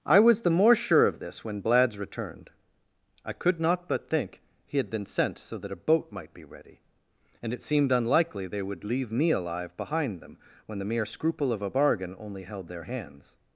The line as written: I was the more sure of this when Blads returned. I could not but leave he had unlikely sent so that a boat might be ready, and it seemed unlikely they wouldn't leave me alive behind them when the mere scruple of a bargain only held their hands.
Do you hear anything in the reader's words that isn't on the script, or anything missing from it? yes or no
yes